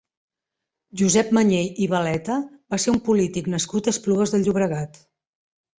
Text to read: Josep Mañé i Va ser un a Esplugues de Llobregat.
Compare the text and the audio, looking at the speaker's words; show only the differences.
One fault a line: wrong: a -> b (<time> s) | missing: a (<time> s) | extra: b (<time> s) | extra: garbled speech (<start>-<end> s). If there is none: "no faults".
extra: Baleta (1.9 s)
extra: polític nascut (3.1 s)